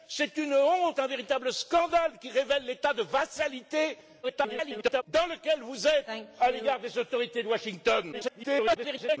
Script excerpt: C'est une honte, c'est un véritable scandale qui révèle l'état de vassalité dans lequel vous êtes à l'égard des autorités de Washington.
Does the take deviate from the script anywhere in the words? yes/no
yes